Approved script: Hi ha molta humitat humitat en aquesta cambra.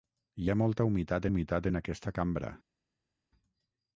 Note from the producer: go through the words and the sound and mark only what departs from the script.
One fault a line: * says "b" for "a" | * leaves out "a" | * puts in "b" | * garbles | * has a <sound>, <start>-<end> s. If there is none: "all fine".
all fine